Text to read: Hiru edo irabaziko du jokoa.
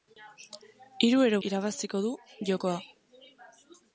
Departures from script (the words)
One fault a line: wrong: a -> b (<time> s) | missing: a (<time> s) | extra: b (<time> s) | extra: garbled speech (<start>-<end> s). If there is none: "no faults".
no faults